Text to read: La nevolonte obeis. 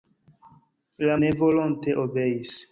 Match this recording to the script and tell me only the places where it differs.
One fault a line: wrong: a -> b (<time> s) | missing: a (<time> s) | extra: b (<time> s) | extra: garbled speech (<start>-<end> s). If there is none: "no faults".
no faults